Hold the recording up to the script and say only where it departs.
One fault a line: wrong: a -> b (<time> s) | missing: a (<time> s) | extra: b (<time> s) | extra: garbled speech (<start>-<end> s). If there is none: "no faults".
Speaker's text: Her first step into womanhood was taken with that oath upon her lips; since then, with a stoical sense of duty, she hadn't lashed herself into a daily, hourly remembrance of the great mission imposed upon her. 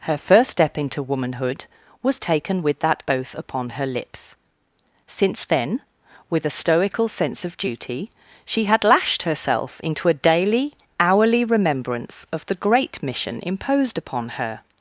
wrong: hadn't -> had (8.6 s)